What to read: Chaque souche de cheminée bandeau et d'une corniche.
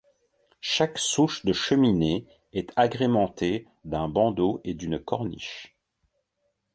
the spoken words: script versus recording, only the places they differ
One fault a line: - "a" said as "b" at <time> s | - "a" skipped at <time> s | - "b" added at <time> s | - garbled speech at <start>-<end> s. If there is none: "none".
- "est agrémentée d'un" added at 2.5 s